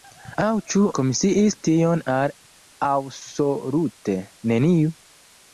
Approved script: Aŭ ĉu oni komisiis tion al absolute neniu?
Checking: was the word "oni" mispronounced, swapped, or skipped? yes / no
yes